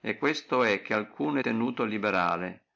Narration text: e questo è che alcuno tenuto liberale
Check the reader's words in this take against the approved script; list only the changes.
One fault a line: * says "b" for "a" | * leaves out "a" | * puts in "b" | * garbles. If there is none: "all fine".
all fine